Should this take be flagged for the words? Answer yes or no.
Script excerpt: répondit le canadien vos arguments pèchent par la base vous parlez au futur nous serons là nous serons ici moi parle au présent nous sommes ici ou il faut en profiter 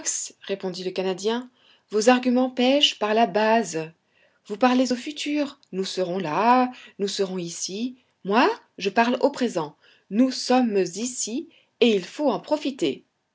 yes